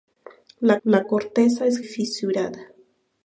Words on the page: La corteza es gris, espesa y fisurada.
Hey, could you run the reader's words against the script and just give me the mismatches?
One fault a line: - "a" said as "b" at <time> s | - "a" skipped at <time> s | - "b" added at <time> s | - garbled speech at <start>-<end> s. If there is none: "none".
- "la" added at 0.8 s
- "gris espesa y" skipped at 1.8 s